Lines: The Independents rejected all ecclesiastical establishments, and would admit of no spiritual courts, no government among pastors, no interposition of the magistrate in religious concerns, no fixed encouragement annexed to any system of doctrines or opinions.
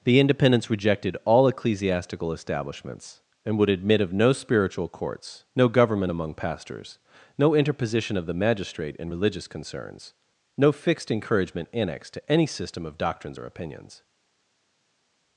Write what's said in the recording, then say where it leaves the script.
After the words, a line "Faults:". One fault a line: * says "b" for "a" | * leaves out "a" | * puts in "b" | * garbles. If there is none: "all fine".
The Independents rejected all ecclesiastical establishments, and would admit of no spiritual courts, no government among pastors, no interposition of the magistrate in religious concerns, no fixed encouragement annexed to any system of doctrines or opinions.
Faults:
all fine